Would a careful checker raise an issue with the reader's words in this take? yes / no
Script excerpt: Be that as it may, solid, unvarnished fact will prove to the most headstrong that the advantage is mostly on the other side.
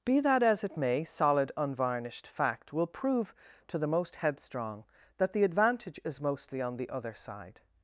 no